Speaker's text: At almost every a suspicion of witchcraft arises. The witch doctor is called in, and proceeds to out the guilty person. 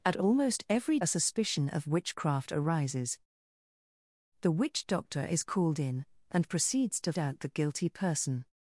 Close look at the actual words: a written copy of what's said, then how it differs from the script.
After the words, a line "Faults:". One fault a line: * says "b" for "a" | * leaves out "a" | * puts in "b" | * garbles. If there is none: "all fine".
At almost every a suspicion of witchcraft arises. The witch doctor is called in, and proceeds to out the guilty person.
Faults:
all fine